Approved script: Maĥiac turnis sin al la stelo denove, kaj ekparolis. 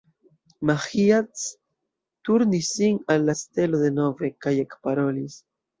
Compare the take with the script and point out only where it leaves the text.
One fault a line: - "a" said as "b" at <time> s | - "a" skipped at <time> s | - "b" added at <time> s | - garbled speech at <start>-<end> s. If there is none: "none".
none